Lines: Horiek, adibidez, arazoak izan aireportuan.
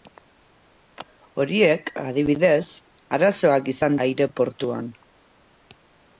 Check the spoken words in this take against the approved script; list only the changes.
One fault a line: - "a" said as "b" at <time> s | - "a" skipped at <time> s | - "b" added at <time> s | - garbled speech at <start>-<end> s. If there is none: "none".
none